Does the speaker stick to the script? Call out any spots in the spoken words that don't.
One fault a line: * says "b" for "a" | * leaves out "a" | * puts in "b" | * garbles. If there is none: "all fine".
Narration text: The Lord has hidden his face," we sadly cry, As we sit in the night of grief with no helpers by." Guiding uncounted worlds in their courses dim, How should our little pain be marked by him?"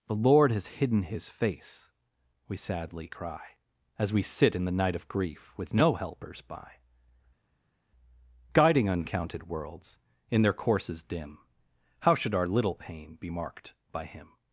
all fine